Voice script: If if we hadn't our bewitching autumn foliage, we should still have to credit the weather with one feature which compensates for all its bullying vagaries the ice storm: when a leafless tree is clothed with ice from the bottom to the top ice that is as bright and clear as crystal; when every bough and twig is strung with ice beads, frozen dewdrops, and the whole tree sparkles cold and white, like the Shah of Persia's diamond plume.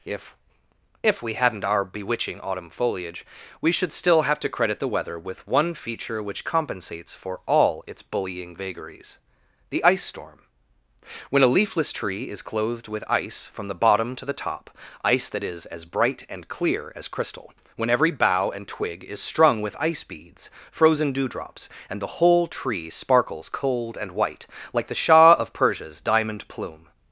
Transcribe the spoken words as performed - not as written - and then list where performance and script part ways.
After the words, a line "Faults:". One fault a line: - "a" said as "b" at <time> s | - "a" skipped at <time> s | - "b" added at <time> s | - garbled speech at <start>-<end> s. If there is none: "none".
If if we hadn't our bewitching autumn foliage, we should still have to credit the weather with one feature which compensates for all its bullying vagaries the ice storm: when a leafless tree is clothed with ice from the bottom to the top ice that is as bright and clear as crystal; when every bough and twig is strung with ice beads, frozen dewdrops, and the whole tree sparkles cold and white, like the Shah of Persia's diamond plume.
Faults:
none